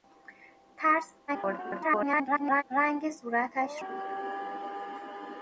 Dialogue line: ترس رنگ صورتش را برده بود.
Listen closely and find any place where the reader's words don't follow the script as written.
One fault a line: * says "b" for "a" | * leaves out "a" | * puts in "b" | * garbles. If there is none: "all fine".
* garbles
* leaves out "را برده"